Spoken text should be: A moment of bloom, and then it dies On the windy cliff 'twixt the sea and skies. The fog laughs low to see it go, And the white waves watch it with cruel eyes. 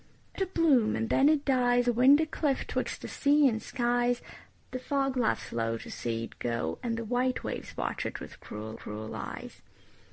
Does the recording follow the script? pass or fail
fail